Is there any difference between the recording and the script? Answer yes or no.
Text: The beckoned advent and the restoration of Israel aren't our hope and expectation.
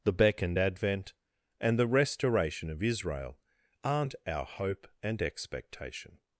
no